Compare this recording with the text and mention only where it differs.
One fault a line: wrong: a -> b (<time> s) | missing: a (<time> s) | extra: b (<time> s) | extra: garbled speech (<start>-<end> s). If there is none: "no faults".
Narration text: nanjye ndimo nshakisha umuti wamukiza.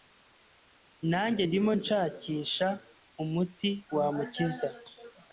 no faults